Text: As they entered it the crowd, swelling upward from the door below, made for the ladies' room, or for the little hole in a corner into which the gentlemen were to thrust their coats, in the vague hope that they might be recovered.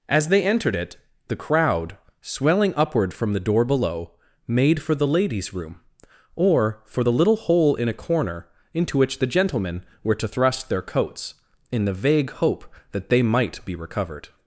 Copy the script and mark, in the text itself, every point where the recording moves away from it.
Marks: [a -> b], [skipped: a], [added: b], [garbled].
As they entered it the crowd, swelling upward from the door below, made for the ladies' room, or for the little hole in a corner into which the gentlemen were to thrust their coats, in the vague hope that they might be recovered.